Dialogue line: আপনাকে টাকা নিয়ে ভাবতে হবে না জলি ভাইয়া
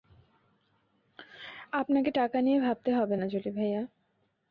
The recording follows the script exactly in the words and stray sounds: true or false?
true